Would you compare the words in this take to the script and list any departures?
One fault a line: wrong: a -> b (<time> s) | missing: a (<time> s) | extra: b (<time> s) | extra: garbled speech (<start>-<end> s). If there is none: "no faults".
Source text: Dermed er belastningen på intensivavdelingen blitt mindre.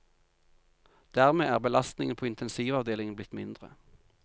no faults